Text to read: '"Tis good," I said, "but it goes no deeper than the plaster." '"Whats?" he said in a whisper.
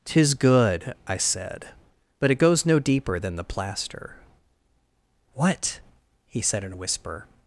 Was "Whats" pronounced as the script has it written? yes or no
no